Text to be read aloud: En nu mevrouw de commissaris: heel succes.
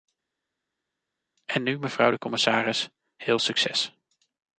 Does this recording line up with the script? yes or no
yes